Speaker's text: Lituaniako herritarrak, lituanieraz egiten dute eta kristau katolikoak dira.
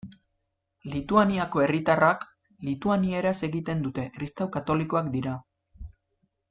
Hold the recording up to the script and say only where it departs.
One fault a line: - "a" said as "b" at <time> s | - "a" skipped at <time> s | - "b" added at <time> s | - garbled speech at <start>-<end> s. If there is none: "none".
- "eta" skipped at 4.1 s